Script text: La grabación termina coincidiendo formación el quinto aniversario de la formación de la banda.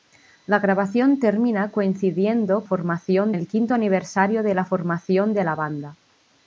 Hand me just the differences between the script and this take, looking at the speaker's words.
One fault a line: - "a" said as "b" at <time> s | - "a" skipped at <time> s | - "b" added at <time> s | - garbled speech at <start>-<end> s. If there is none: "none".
none